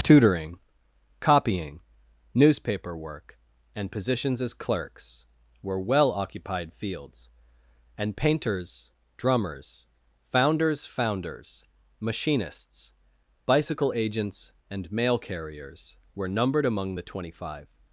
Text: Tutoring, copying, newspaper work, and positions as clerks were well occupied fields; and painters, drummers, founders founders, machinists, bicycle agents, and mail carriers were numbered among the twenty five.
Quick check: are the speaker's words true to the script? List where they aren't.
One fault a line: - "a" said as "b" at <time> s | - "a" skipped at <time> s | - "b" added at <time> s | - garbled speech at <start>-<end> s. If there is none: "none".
none